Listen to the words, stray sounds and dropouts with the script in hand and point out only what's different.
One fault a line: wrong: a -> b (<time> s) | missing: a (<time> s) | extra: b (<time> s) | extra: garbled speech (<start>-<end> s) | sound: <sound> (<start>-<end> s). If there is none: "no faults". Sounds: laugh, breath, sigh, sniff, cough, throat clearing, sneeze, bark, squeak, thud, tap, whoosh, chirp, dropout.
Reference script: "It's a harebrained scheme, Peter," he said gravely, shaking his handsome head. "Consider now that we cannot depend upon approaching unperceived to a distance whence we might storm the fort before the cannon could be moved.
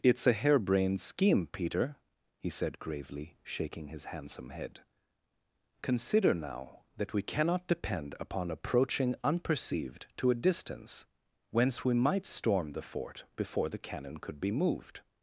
no faults